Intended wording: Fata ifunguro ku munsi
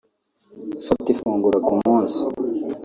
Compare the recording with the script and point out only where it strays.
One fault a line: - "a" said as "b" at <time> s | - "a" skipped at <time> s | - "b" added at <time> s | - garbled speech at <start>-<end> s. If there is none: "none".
none